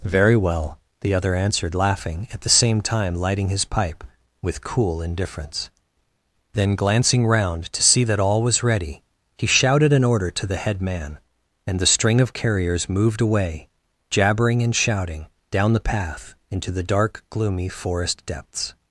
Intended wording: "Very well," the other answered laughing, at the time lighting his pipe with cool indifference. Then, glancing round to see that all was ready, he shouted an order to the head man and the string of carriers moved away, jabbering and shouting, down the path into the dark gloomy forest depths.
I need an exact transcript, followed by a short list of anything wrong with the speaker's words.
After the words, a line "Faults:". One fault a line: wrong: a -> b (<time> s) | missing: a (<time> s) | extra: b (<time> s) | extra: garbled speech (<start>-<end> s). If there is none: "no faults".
"Very well," the other answered laughing, at the same time lighting his pipe with cool indifference. Then, glancing round to see that all was ready, he shouted an order to the head man and the string of carriers moved away, jabbering and shouting, down the path into the dark gloomy forest depths.
Faults:
extra: same (2.5 s)